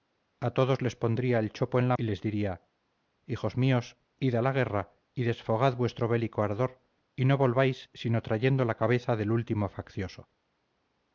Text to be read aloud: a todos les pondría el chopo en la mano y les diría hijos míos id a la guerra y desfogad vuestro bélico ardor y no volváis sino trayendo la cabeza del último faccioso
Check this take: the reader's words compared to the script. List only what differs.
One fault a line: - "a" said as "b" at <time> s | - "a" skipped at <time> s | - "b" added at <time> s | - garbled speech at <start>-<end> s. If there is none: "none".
- "mano" skipped at 1.9 s